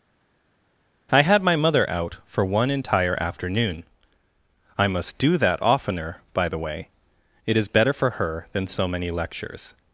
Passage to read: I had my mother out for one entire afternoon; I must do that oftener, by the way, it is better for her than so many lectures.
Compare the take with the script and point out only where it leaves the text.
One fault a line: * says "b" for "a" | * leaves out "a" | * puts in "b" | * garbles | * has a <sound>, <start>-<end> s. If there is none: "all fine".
all fine